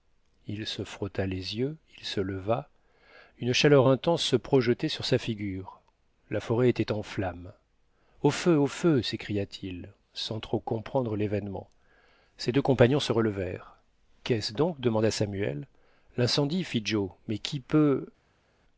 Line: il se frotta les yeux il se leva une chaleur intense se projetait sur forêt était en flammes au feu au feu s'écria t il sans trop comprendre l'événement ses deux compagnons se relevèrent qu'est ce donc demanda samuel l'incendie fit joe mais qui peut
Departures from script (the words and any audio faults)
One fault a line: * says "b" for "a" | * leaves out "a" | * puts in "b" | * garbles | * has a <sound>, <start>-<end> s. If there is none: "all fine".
* puts in "sa figure la"